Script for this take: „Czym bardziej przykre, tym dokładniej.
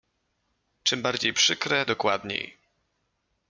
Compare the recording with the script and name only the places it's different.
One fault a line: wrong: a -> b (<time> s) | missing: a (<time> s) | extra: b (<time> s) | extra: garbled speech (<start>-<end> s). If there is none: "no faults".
missing: tym (1.9 s)